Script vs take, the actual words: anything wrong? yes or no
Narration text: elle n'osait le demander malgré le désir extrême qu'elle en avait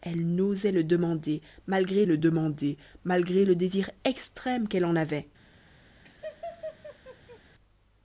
yes